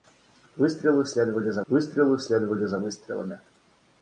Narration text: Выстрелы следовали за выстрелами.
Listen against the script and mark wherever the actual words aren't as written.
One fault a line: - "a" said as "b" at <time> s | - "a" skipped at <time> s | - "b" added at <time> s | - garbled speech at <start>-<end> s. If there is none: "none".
- "выстрелы следовали за" added at 1.7 s